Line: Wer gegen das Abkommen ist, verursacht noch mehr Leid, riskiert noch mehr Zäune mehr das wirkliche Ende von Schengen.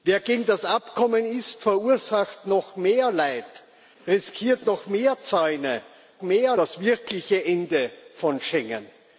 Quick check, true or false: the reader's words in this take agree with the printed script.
true